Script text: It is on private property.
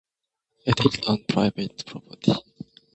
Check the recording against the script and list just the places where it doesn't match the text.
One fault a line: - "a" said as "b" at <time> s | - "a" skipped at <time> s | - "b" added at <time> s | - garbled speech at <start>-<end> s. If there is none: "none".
none